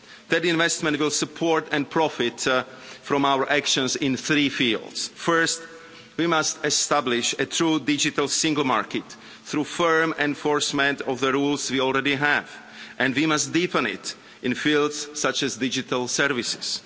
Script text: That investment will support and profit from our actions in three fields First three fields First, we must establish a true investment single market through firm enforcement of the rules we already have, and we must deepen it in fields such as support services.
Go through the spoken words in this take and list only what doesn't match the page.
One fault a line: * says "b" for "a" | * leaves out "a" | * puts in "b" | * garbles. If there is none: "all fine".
* leaves out "three fields First"
* says "digital" for "investment"
* says "digital" for "support"